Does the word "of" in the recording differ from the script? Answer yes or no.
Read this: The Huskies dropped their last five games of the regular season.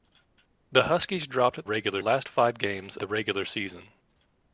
yes